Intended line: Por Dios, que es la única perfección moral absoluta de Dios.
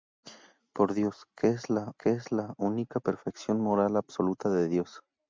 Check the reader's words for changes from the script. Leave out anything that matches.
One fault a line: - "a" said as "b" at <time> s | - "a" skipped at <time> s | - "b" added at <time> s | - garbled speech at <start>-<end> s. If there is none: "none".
- "que es la" added at 2.0 s